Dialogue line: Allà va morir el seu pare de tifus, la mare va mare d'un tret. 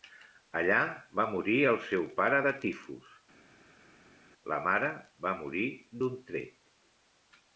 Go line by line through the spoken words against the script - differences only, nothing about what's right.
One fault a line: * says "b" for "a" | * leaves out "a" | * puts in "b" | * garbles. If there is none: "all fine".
* says "morir" for "mare"